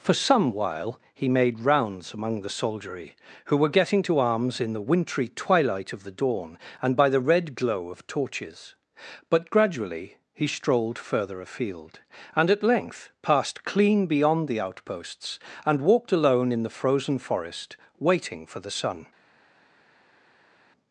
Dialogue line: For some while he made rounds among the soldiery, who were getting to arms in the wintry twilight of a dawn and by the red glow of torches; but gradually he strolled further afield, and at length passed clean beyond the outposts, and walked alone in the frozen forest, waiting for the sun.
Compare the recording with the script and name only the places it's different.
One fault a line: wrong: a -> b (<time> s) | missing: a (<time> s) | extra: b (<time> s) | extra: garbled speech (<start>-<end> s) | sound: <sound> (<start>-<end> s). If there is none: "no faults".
wrong: a -> the (6.0 s)